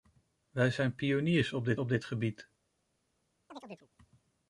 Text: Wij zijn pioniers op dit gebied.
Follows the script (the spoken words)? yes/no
no